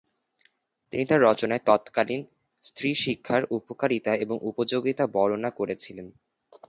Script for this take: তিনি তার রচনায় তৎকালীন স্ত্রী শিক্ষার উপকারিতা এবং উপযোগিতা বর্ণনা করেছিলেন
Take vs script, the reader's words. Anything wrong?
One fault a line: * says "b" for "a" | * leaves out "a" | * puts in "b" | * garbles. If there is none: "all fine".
all fine